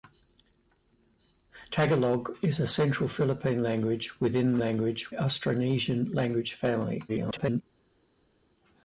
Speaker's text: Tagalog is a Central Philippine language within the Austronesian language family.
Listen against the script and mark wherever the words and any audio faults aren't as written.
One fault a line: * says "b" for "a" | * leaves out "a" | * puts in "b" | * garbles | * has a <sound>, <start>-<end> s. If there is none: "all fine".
* says "language" for "the"
* garbles